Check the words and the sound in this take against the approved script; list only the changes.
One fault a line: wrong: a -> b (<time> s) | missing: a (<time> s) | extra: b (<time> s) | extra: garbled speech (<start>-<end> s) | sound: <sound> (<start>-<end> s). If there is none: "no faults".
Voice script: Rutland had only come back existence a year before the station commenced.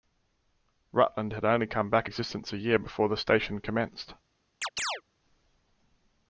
sound: chirp (4.6-5.0 s)